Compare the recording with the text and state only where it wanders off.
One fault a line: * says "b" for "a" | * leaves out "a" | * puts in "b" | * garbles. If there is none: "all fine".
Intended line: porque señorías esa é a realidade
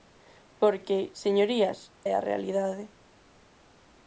* leaves out "esa"